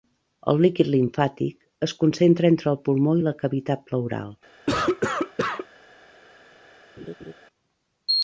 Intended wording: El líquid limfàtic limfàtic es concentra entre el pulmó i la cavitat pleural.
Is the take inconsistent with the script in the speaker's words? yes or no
yes